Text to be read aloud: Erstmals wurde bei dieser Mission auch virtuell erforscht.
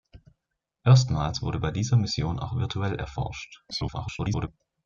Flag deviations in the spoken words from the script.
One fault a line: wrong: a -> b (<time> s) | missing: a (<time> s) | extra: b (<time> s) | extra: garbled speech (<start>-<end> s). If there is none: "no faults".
extra: garbled speech (3.7-4.5 s)